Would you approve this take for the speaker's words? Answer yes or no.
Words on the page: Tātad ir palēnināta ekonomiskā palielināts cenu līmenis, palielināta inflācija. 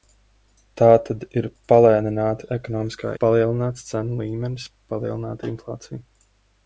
yes